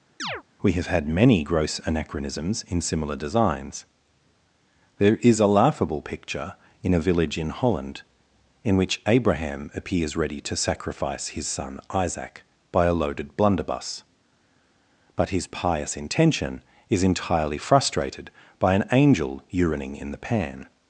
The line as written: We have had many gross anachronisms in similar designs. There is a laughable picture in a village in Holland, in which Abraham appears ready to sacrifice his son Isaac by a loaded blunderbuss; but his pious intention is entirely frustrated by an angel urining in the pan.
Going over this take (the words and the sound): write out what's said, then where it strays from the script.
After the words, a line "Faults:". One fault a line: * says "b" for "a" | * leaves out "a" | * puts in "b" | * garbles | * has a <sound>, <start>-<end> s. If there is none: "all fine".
We have had many gross anachronisms in similar designs. There is a laughable picture in a village in Holland, in which Abraham appears ready to sacrifice his son Isaac by a loaded blunderbuss; but his pious intention is entirely frustrated by an angel urining in the pan.
Faults:
* has a chirp, 0.2-0.4 s